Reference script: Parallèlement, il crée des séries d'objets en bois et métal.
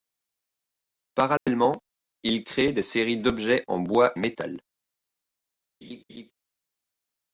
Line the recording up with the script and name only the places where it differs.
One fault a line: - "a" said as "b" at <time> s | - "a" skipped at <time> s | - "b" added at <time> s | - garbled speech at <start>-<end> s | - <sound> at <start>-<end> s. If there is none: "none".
- dropout at 1.4-1.5 s
- "et" skipped at 4.1 s
- laugh at 5.8-6.3 s